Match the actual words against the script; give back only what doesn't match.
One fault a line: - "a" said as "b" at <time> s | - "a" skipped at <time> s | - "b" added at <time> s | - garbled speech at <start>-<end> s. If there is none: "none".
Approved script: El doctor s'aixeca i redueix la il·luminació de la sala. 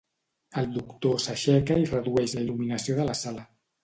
none